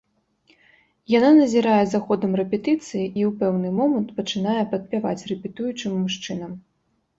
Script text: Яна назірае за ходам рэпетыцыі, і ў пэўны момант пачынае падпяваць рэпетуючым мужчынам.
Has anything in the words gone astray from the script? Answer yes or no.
no